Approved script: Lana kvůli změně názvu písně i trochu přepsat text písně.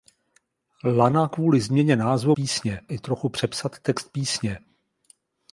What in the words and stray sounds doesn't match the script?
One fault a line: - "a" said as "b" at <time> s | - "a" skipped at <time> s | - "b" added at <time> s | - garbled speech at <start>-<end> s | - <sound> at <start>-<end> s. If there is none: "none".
none